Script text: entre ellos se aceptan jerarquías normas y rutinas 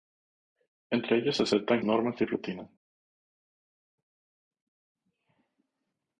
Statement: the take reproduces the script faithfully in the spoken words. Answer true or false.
false